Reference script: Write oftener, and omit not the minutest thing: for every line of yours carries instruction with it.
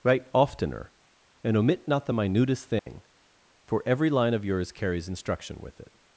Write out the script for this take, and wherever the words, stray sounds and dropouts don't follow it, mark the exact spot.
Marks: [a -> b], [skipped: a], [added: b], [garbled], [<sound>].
Write oftener, and omit not the minutest thing: [dropout] for every line of yours carries instruction with it.